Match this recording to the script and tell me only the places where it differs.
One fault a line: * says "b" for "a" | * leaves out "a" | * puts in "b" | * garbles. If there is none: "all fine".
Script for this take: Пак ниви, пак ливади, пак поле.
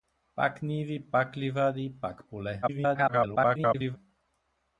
* garbles